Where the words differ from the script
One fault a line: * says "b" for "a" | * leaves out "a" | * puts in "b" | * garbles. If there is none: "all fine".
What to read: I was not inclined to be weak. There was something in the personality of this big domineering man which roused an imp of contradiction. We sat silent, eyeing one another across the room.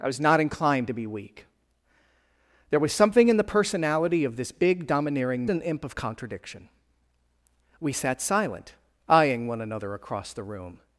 * leaves out "man which roused"